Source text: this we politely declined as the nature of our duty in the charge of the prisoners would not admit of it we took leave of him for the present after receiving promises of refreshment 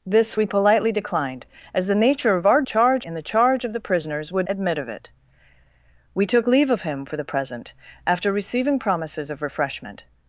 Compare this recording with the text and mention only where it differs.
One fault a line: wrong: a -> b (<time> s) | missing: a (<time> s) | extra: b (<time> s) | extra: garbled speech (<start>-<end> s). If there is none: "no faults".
wrong: duty -> charge (2.6 s)
missing: not (4.5 s)